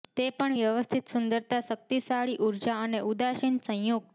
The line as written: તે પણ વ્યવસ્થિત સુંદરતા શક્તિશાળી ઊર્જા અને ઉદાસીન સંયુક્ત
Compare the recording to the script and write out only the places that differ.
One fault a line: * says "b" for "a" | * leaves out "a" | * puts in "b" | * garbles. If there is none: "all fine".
all fine